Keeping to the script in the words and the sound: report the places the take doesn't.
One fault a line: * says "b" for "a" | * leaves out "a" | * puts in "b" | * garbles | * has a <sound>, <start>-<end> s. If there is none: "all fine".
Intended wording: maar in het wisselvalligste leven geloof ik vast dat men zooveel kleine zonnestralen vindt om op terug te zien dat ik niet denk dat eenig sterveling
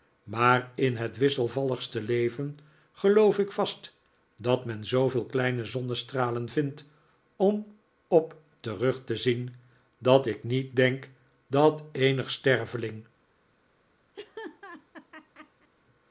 * has a laugh, 14.1-15.7 s